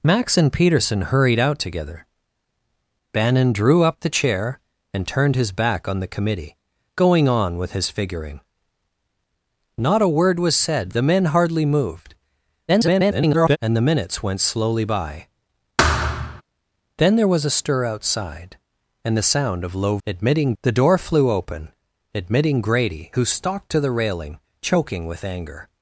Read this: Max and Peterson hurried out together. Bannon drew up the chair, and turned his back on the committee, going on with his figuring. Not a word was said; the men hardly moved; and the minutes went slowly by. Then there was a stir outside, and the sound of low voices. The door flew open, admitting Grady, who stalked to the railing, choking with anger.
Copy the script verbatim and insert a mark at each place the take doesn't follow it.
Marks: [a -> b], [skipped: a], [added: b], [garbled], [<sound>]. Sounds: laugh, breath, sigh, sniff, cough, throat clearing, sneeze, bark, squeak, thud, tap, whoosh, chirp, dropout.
Max and Peterson hurried out together. Bannon drew up the chair, and turned his back on the committee, going on with his figuring. Not a word was said; the men hardly moved; [garbled] and the minutes went slowly by. [thud] Then there was a stir outside, and the sound of low [voices. -> admitting] The door flew open, admitting Grady, who stalked to the railing, choking with anger.